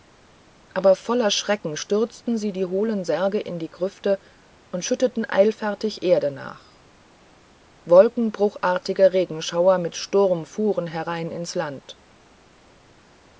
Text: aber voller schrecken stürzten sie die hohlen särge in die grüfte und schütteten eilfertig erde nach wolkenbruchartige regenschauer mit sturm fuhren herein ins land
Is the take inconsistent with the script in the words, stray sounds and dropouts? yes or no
no